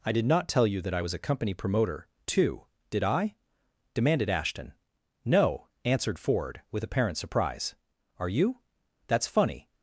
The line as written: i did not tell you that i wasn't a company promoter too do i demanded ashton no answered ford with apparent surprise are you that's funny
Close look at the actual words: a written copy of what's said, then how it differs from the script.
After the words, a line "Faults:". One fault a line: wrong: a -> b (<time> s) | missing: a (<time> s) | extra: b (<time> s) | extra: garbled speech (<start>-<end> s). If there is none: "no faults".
i did not tell you that i was a company promoter too did i demanded ashton no answered ford with apparent surprise are you that's funny
Faults:
wrong: wasn't -> was (1.0 s)
wrong: do -> did (2.9 s)